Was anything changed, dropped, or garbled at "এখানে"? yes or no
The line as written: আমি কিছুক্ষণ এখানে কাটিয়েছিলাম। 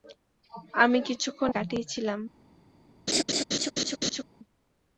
yes